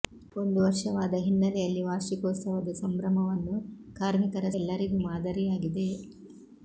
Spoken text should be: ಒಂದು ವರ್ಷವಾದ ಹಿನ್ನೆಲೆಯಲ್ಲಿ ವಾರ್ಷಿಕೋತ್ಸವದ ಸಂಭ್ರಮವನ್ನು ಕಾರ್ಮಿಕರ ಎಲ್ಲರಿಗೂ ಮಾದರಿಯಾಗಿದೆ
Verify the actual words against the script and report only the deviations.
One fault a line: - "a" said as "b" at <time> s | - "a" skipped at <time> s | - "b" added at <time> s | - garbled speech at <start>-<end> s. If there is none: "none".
none